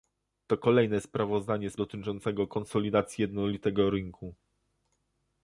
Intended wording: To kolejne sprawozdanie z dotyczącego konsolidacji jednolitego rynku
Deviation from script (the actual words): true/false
false